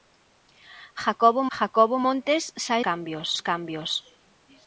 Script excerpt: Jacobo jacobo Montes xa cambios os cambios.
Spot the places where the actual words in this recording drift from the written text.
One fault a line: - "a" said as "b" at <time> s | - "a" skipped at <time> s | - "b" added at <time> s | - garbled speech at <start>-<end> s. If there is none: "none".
none